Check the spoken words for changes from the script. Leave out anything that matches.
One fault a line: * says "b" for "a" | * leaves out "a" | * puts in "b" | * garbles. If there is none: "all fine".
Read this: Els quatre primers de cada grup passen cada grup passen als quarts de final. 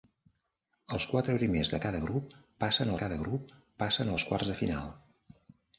all fine